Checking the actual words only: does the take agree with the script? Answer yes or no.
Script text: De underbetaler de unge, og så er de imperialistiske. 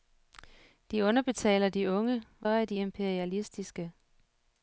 no